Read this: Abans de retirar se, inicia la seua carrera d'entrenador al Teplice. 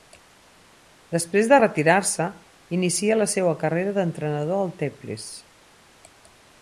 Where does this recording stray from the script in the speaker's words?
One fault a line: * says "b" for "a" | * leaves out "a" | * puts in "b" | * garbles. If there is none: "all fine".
* says "Després" for "Abans"